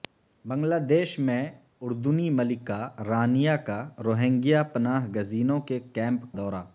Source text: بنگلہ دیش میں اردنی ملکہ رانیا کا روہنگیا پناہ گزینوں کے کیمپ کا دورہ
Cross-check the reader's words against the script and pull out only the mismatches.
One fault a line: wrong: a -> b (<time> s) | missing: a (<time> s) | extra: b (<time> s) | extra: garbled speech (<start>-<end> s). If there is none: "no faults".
missing: کا (6.3 s)